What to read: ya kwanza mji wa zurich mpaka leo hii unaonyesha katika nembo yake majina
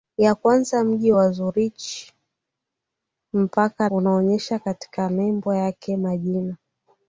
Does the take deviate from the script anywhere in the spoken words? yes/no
yes